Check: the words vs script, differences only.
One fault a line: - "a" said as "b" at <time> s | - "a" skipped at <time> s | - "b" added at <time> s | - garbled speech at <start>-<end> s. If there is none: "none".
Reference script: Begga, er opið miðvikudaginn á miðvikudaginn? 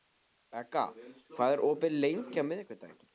- "hvað" added at 1.4 s
- "miðvikudaginn" said as "lengi" at 2.0 s